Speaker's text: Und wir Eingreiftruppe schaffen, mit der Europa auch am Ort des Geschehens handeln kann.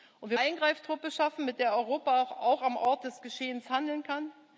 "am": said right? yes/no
yes